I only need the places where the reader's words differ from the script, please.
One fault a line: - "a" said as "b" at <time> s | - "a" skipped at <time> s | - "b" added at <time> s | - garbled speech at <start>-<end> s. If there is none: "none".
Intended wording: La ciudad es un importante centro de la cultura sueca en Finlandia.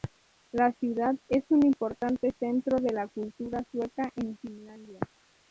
none